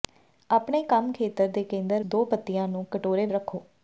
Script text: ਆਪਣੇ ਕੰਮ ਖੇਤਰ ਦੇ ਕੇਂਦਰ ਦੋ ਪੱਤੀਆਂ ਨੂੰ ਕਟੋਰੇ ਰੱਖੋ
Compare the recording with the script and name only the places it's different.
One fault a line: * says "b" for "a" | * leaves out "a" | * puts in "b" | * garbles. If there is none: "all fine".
all fine